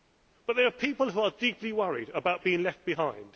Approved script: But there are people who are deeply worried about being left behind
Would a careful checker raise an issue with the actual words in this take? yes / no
no